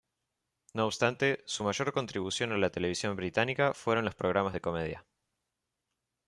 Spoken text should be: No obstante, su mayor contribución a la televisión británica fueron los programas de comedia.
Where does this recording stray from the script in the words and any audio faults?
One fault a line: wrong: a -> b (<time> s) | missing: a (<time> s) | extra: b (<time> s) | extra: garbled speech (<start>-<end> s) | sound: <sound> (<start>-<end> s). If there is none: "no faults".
no faults